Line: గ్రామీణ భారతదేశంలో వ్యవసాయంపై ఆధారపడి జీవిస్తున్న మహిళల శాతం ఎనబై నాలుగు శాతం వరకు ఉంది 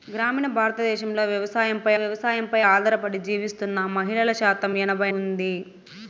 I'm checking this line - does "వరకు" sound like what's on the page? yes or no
no